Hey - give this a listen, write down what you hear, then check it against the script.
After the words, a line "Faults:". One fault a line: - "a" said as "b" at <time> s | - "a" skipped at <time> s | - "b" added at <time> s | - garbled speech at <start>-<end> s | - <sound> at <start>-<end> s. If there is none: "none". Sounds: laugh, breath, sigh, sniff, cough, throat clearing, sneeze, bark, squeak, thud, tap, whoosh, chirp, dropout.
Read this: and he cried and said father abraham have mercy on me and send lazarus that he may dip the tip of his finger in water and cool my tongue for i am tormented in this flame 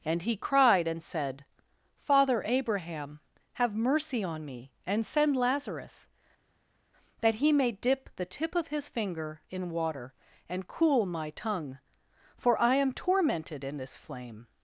and he cried and said father abraham have mercy on me and send lazarus that he may dip the tip of his finger in water and cool my tongue for i am tormented in this flame
Faults:
none